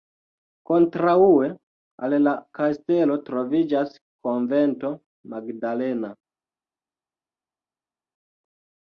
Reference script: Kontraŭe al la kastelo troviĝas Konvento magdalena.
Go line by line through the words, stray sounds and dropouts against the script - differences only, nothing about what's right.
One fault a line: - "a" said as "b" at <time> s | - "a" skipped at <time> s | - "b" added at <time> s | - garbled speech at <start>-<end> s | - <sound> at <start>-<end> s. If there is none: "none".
none